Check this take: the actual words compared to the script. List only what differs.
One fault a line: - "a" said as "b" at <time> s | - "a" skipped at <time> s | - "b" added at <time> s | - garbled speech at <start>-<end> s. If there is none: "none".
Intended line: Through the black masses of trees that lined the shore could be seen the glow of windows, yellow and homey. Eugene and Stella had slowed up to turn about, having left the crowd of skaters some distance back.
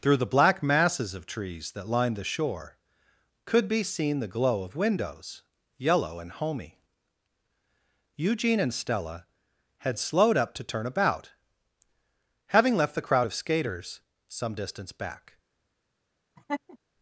none